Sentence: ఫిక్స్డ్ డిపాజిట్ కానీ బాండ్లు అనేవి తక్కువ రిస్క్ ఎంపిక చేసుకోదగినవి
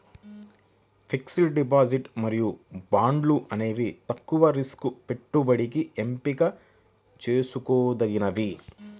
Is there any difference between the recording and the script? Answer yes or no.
yes